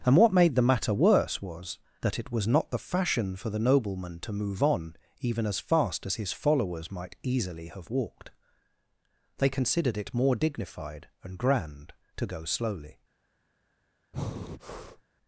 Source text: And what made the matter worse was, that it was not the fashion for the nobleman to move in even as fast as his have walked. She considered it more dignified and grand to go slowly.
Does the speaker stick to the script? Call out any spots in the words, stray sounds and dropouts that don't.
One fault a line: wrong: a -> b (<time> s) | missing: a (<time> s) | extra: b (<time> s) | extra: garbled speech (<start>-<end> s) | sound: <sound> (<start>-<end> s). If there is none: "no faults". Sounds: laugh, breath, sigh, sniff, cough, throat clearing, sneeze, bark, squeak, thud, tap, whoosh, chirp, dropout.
wrong: in -> on (4.6 s)
extra: followers might easily (6.3 s)
wrong: She -> They (9.4 s)
sound: breath (14.1-15.0 s)